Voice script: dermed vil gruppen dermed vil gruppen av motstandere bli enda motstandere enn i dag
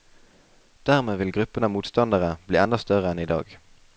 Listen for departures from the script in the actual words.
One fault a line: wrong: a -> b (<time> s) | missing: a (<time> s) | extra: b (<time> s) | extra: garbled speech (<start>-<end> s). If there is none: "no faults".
missing: dermed vil gruppen (1.7 s)
wrong: motstandere -> større (2.9 s)